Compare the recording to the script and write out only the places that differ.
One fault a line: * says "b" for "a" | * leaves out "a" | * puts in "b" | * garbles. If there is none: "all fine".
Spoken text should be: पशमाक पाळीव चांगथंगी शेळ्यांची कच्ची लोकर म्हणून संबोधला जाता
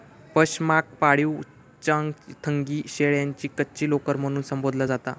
all fine